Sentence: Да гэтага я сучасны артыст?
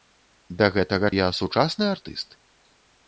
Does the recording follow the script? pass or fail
pass